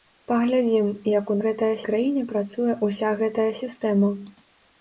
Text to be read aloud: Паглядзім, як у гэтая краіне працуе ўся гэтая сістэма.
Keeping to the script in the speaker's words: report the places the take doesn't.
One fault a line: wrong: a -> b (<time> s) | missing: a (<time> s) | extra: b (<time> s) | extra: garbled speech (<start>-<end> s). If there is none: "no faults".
no faults